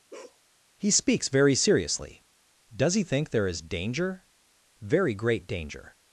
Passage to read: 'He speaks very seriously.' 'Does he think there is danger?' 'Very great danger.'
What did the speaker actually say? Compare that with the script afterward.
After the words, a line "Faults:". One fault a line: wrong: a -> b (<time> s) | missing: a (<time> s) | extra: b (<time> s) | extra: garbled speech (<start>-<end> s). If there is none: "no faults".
'He speaks very seriously.' 'Does he think there is danger?' 'Very great danger.'
Faults:
no faults